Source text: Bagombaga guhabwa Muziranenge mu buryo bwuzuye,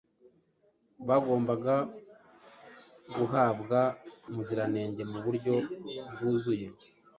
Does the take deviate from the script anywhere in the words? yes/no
no